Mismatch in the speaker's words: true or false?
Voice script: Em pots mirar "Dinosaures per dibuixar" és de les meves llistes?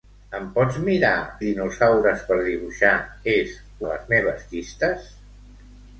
false